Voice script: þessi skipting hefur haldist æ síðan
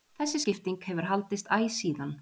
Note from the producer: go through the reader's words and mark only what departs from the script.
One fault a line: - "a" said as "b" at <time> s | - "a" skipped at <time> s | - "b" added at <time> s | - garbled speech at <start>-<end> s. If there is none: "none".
none